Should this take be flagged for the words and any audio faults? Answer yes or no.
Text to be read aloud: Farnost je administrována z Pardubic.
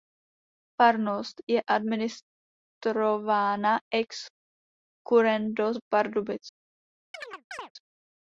yes